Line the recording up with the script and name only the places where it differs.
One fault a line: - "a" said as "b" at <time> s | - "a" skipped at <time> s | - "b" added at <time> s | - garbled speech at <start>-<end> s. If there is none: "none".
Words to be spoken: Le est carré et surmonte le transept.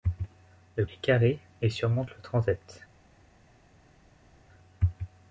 none